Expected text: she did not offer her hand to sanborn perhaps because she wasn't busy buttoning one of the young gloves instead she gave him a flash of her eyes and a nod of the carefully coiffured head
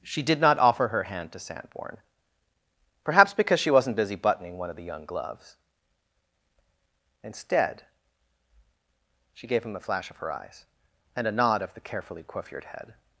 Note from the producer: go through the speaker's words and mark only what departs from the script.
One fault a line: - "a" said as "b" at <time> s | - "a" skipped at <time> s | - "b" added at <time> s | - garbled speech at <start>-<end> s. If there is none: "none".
none